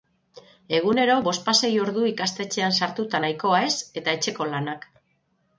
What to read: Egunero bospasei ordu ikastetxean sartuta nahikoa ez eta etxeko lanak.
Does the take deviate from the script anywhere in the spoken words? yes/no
no